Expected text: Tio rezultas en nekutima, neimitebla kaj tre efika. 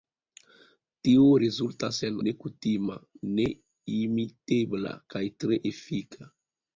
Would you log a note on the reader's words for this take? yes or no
no